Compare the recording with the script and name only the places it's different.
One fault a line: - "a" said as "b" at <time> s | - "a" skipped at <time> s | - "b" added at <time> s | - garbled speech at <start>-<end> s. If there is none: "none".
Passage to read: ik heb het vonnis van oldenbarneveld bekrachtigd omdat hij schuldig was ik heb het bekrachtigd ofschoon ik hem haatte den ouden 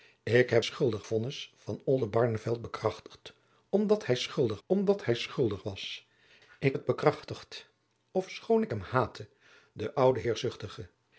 - "het" said as "schuldig" at 0.6 s
- "omdat hij schuldig" added at 4.7 s
- "heb" skipped at 6.8 s